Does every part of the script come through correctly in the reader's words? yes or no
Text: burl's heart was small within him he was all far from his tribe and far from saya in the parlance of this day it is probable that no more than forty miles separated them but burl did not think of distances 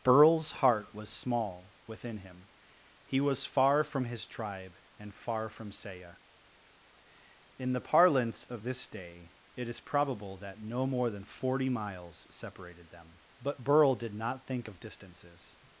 no